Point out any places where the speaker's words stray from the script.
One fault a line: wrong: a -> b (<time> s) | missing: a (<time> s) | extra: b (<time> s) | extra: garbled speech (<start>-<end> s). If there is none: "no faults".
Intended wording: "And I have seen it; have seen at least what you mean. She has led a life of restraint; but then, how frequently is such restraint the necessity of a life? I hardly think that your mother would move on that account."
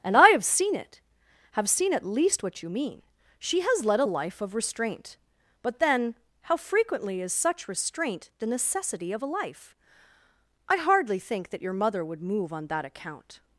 no faults